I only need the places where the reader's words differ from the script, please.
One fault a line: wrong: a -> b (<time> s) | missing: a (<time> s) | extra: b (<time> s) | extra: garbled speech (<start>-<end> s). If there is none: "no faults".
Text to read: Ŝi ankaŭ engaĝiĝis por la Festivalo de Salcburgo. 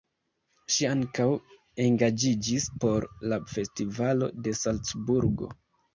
no faults